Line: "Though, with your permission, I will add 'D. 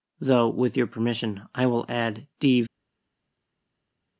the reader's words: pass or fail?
pass